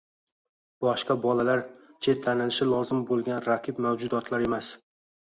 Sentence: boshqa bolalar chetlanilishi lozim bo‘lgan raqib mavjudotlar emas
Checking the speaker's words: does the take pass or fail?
pass